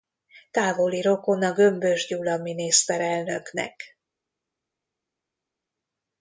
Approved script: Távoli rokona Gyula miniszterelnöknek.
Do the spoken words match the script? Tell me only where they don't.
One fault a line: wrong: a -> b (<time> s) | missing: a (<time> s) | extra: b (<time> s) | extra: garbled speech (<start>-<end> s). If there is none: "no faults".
extra: Gömbös (1.5 s)